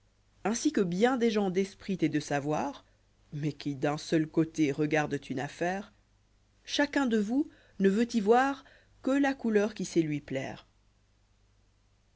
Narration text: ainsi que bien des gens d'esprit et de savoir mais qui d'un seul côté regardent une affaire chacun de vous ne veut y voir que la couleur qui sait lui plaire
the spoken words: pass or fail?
pass